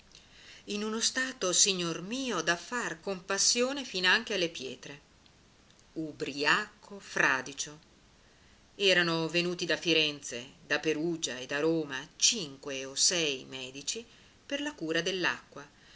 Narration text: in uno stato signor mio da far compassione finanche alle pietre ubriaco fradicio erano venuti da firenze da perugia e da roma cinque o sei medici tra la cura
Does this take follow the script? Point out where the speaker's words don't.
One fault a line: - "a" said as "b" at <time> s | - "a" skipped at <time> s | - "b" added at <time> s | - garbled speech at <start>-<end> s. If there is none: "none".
- "tra" said as "per" at 14.4 s